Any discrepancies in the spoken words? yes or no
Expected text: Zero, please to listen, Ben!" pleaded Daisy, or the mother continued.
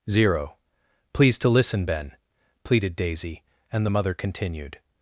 yes